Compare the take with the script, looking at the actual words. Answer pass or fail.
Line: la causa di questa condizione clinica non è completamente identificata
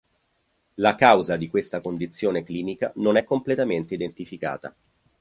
pass